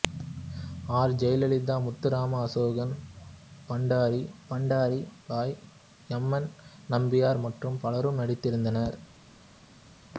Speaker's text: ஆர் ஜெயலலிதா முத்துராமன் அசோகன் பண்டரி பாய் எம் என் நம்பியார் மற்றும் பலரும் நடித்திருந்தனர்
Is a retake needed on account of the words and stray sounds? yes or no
yes